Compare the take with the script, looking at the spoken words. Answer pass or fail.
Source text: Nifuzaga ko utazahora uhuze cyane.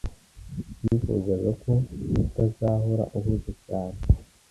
pass